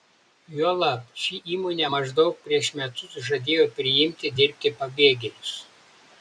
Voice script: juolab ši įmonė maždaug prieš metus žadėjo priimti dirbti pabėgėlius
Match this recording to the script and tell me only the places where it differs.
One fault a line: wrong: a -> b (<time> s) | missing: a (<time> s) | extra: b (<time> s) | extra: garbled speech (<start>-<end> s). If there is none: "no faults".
no faults